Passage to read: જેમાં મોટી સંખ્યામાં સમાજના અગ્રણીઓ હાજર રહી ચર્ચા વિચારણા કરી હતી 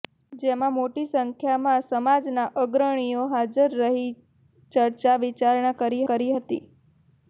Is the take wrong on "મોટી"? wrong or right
right